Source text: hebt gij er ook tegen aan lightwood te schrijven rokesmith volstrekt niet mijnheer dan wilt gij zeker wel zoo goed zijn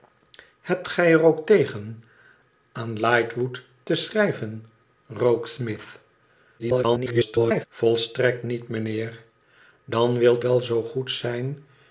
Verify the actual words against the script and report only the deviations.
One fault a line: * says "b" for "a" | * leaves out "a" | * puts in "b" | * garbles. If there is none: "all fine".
* garbles
* leaves out "gij zeker"